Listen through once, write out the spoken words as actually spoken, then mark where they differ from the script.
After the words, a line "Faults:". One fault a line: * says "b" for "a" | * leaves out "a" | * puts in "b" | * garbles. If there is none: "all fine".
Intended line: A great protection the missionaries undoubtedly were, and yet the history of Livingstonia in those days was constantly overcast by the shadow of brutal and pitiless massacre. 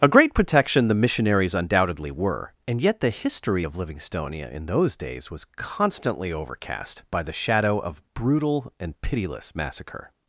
A great protection the missionaries undoubtedly were, and yet the history of Livingstonia in those days was constantly overcast by the shadow of brutal and pitiless massacre.
Faults:
all fine